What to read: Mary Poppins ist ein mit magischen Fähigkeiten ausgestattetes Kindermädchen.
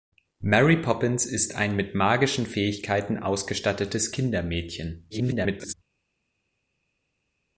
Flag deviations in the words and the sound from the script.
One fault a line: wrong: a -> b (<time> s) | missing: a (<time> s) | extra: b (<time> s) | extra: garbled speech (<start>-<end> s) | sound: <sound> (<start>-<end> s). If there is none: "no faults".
extra: garbled speech (5.1-5.7 s)